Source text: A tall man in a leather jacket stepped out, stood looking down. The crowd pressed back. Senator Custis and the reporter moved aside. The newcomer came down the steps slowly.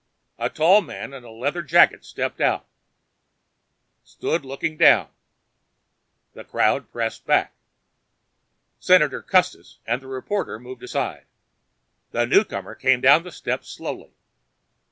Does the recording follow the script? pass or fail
pass